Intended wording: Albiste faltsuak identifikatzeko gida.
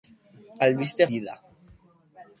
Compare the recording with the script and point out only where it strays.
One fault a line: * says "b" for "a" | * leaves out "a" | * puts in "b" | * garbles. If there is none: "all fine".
* leaves out "faltsuak identifikatzeko"